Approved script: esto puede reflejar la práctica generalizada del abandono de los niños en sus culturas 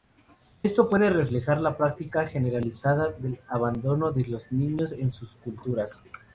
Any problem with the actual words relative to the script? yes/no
no